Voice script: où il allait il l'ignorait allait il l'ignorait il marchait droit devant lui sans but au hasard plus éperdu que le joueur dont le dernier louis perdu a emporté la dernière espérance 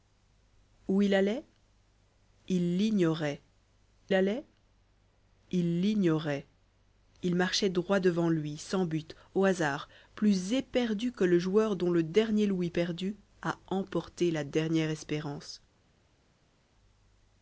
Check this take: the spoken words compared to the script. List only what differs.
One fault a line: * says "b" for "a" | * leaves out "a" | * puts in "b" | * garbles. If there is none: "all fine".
all fine